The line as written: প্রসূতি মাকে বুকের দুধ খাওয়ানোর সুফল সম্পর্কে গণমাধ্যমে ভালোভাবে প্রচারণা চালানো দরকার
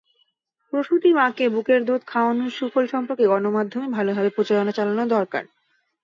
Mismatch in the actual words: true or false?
false